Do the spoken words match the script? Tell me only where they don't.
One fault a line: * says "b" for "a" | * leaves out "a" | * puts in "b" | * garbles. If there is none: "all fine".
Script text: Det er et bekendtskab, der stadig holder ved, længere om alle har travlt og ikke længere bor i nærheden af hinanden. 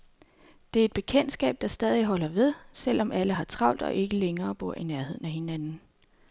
* says "selv" for "længere"